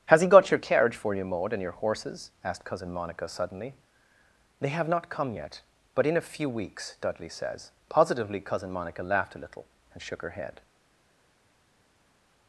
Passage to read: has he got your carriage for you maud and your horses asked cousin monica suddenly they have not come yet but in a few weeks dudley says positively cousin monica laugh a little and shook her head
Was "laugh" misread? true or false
true